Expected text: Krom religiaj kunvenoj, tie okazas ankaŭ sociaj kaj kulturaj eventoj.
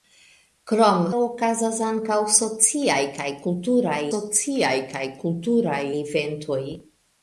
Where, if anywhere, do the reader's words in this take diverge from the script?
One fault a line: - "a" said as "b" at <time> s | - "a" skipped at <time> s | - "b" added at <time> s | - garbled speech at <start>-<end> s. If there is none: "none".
- "religiaj kunvenoj tie okazas ankaŭ" said as "okazas ankaŭ sociaj kaj kulturaj" at 1.2 s